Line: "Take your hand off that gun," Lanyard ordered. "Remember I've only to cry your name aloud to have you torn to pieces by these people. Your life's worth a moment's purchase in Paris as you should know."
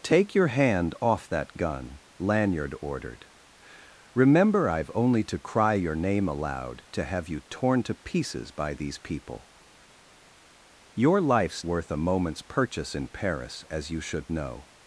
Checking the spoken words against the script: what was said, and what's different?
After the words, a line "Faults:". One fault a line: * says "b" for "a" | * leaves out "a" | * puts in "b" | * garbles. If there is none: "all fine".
"Take your hand off that gun," Lanyard ordered. "Remember I've only to cry your name aloud to have you torn to pieces by these people. Your life's worth a moment's purchase in Paris as you should know."
Faults:
all fine